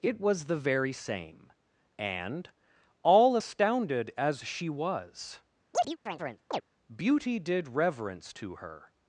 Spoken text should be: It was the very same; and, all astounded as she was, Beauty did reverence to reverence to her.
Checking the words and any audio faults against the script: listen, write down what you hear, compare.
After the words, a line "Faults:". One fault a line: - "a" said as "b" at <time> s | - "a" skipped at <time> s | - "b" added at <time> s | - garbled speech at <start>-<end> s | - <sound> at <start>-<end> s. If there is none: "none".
It was the very same; and, all astounded as she was, Beauty did reverence to her.
Faults:
- chirp at 5.7-6.6 s
- "reverence to" skipped at 8.6 s